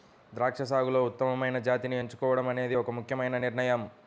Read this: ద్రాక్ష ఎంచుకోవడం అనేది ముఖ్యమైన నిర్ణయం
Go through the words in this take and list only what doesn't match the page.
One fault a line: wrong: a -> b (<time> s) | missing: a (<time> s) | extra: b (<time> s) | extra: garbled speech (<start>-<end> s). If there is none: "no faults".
extra: సాగులో ఉత్తమమైన జాతిని (0.6 s)
extra: ఒక (2.7 s)